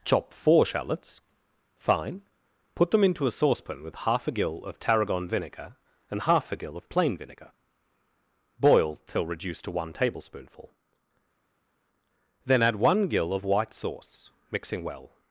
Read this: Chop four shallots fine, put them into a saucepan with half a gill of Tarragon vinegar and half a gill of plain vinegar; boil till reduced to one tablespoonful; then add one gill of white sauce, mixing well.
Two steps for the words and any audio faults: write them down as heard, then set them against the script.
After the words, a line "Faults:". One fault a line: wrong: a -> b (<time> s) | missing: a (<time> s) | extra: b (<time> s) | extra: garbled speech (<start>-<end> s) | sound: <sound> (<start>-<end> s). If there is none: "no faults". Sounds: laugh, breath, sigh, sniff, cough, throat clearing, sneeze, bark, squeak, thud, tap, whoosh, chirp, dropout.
Chop four shallots fine, put them into a saucepan with half a gill of Tarragon vinegar and half a gill of plain vinegar; boil till reduced to one tablespoonful; then add one gill of white sauce, mixing well.
Faults:
no faults